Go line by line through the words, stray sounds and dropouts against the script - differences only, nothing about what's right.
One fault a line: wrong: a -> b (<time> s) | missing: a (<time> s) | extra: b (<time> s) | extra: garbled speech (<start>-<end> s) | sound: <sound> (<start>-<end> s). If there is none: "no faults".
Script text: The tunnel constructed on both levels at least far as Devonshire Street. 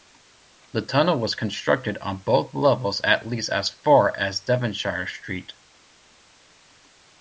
extra: was (1.2 s)
extra: as (3.5 s)